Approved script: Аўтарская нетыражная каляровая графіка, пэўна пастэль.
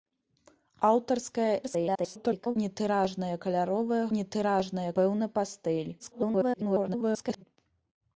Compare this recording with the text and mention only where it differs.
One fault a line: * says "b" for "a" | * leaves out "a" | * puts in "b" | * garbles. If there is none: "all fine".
* garbles
* says "нетыражная" for "графіка"
* garbles